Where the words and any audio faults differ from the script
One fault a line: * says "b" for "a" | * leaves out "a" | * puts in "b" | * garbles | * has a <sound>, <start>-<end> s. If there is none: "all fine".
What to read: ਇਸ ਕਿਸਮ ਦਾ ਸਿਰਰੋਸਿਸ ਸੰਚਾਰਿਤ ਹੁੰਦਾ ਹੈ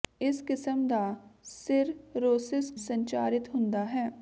all fine